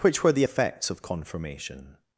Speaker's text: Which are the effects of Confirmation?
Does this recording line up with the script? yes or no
no